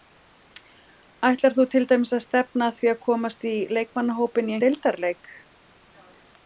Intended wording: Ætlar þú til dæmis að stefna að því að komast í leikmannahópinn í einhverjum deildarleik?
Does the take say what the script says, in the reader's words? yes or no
no